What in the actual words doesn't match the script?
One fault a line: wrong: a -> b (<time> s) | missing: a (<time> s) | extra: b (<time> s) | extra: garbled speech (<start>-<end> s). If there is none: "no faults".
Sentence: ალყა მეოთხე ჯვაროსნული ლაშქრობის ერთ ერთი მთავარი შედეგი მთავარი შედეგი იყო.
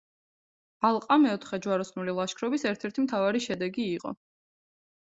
missing: მთავარი შედეგი (3.9 s)